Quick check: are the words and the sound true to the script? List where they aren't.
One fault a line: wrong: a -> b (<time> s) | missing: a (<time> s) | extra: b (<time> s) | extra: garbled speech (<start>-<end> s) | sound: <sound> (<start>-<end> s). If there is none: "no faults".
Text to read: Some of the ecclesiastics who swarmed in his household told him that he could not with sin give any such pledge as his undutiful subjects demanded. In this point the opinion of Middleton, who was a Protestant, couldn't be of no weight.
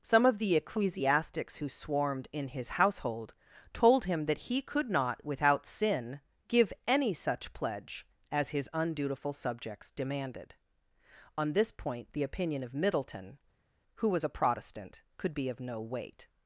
wrong: with -> without (5.2 s)
wrong: In -> On (11.4 s)
wrong: couldn't -> could (15.2 s)